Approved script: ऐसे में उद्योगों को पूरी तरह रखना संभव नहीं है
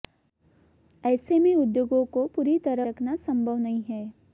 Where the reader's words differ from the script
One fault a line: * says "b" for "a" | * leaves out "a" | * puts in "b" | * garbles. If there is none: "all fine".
all fine